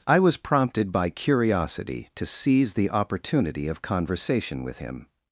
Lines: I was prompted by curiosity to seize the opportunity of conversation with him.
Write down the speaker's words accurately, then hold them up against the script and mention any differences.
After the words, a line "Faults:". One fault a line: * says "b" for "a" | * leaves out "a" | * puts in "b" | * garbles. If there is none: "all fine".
I was prompted by curiosity to seize the opportunity of conversation with him.
Faults:
all fine